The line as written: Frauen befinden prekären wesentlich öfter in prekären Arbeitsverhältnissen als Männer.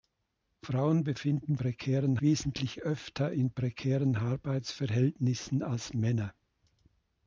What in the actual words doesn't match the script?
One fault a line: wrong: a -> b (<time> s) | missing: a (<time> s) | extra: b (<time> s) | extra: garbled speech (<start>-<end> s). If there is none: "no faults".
no faults